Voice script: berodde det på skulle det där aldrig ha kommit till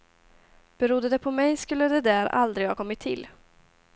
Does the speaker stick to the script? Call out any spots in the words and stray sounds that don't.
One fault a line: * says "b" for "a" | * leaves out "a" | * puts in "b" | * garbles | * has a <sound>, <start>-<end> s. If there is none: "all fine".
* puts in "mig"